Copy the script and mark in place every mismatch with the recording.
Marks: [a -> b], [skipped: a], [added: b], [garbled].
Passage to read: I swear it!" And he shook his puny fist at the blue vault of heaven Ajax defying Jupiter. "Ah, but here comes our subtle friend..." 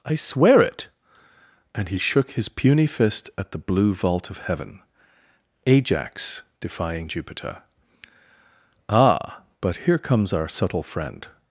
I swear it!" And he shook his puny fist at the blue vault of heaven Ajax defying Jupiter. "Ah, but here comes our subtle friend..."